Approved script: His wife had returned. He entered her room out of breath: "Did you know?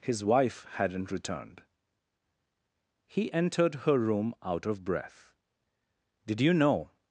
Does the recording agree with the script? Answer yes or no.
no